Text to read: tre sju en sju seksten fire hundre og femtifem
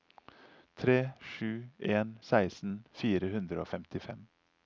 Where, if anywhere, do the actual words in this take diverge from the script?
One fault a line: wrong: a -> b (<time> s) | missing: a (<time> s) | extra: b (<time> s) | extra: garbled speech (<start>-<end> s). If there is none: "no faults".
missing: sju (2.1 s)